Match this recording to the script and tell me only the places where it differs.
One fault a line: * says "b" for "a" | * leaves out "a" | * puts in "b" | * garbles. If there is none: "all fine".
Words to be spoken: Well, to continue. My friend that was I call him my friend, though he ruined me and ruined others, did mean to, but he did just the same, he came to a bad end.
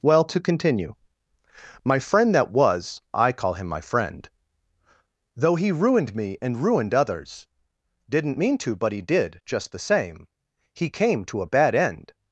* says "didn't" for "did"